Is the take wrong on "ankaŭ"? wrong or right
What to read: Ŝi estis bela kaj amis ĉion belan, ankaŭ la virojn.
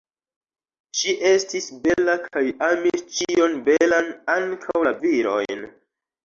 right